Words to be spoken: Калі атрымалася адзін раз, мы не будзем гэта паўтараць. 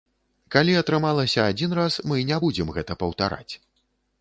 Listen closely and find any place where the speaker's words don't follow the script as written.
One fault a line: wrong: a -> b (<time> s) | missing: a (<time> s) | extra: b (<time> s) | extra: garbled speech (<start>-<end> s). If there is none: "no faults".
no faults